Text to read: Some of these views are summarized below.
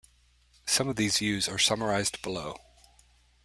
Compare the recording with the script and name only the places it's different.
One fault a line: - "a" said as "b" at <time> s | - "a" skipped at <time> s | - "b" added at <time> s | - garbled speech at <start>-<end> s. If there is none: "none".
none